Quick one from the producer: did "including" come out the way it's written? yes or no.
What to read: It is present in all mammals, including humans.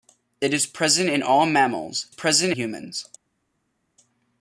no